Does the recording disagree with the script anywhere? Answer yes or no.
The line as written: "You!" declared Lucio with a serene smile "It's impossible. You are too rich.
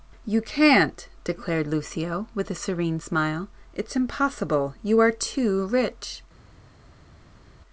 yes